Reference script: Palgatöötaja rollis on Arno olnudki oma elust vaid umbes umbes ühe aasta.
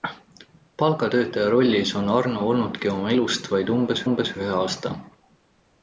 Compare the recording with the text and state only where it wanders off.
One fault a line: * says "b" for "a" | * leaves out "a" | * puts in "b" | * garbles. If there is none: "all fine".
all fine